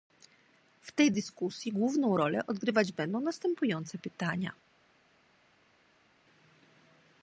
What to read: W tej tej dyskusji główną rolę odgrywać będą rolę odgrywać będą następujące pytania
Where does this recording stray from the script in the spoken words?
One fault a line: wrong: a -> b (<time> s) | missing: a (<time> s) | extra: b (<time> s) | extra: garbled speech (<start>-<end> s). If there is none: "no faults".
missing: tej (1.1 s)
missing: rolę odgrywać będą (3.2 s)